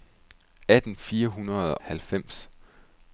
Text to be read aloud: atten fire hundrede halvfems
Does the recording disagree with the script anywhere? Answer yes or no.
no